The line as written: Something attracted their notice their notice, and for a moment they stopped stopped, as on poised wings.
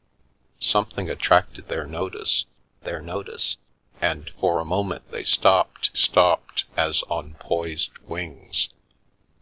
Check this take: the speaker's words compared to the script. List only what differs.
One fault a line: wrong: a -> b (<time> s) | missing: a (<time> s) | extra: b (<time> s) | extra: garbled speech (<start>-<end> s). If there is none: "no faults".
no faults